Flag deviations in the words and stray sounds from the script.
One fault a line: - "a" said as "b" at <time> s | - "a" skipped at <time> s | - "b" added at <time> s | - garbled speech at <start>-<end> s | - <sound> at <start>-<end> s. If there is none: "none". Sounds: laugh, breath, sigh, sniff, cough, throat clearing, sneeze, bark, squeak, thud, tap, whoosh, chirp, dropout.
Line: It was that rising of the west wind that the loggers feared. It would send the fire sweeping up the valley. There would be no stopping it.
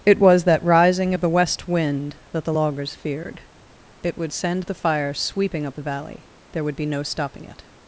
none